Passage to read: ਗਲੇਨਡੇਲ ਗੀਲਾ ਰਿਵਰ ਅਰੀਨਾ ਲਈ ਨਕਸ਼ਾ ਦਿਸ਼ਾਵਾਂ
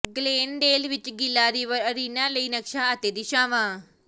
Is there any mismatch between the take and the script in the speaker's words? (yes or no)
yes